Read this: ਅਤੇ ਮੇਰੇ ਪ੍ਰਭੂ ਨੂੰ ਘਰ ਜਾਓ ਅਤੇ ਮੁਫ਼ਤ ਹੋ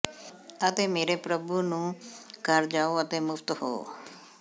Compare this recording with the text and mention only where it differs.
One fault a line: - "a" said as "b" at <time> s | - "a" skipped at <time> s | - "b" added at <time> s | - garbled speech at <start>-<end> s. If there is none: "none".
none